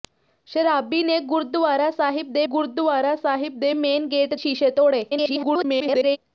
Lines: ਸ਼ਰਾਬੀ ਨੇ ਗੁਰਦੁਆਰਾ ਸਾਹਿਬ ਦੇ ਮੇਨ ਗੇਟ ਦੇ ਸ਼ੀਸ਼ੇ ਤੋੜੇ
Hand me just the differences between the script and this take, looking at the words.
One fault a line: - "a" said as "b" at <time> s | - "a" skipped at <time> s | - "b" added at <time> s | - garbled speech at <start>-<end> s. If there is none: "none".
- "ਗੁਰਦੁਆਰਾ ਸਾਹਿਬ ਦੇ" added at 2.5 s
- "ਦੇ" skipped at 4.3 s
- garbled speech at 5.1-6.2 s